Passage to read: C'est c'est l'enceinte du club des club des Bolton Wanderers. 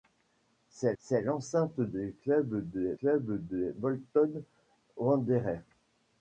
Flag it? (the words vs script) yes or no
no